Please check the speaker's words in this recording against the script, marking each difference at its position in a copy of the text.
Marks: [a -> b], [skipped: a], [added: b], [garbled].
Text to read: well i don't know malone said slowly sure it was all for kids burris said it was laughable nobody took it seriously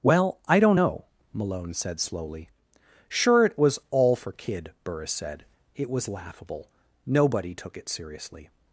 well i don't know malone said slowly sure it was all for [kids -> kid] burris said it was laughable nobody took it seriously